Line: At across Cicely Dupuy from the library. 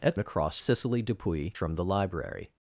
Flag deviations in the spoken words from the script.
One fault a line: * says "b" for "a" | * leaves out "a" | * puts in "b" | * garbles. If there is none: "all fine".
all fine